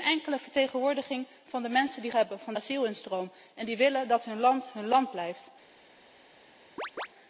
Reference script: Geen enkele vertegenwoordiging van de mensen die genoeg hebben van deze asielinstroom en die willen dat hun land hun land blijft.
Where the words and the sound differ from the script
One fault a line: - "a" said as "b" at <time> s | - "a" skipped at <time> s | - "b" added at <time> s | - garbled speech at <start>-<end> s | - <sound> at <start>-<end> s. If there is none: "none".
- "genoeg" skipped at 2.1 s
- "deze" skipped at 2.5 s
- chirp at 6.8-7.1 s